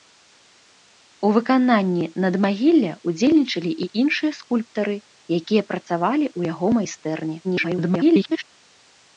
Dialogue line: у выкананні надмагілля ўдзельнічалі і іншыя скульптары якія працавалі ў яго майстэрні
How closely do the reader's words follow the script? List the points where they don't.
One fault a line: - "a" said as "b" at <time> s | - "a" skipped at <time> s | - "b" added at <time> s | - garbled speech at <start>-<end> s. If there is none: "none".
- garbled speech at 7.4-8.4 s